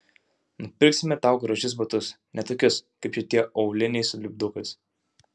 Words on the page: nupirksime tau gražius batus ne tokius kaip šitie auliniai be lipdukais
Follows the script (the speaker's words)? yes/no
no